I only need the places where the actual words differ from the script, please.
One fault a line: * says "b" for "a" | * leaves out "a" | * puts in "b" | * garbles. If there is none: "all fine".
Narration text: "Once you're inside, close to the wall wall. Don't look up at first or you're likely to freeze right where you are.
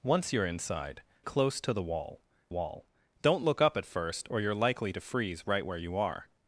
all fine